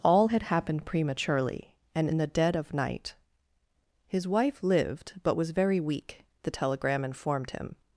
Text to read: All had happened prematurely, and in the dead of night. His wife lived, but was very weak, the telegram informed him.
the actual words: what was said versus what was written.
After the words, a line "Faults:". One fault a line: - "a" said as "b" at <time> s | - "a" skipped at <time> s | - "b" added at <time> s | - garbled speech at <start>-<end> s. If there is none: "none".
All had happened prematurely, and in the dead of night. His wife lived, but was very weak, the telegram informed him.
Faults:
none